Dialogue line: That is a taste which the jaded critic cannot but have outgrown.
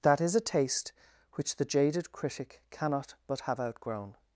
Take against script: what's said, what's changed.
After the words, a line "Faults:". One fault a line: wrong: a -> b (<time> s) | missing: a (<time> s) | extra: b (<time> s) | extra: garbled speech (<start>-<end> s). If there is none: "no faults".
That is a taste which the jaded critic cannot but have outgrown.
Faults:
no faults